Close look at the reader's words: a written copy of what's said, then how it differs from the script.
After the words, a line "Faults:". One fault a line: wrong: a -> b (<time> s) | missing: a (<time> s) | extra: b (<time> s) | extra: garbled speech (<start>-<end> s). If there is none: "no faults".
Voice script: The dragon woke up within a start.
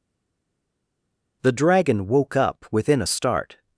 The dragon woke up within a start.
Faults:
no faults